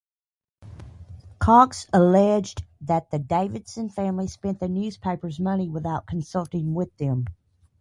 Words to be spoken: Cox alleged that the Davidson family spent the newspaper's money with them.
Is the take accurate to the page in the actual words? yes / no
no